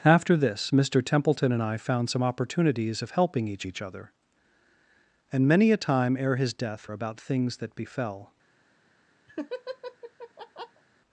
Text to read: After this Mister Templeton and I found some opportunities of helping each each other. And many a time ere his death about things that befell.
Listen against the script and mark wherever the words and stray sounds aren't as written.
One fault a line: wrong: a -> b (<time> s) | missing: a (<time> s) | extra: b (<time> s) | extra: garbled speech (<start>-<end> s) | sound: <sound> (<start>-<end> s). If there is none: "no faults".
sound: laugh (9.3-10.8 s)